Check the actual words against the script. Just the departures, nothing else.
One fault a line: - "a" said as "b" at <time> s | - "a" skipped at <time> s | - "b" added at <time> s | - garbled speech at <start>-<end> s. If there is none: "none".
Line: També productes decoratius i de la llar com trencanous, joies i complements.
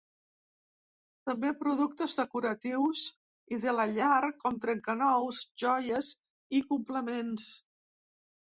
none